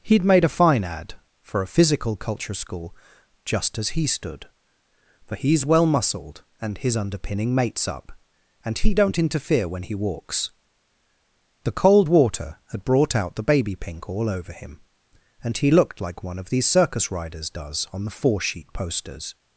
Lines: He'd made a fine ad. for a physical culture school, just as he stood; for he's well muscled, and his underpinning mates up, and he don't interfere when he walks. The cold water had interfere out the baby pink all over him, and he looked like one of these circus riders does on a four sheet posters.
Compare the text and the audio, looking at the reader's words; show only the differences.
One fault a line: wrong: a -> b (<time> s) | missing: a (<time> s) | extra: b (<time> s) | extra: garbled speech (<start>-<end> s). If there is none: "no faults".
wrong: interfere -> brought (12.8 s)
wrong: a -> the (18.0 s)